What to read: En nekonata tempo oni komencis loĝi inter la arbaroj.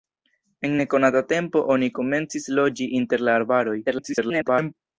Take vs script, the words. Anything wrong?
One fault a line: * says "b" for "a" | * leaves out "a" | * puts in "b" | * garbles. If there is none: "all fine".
* garbles